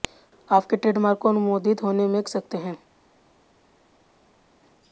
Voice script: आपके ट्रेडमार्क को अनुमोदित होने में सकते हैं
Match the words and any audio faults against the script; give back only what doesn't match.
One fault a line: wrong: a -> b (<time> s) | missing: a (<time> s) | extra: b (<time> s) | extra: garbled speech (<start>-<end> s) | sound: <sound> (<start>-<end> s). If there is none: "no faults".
no faults